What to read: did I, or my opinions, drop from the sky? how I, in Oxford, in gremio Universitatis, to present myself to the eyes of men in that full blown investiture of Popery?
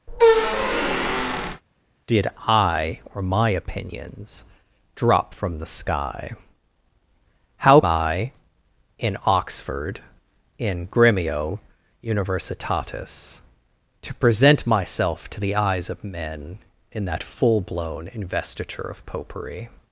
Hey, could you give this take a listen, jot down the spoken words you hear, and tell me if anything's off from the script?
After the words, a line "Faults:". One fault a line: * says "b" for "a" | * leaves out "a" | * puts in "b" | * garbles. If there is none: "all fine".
did I, or my opinions, drop from the sky? how I, in Oxford, in gremio Universitatis, to present myself to the eyes of men in that full blown investiture of Popery?
Faults:
all fine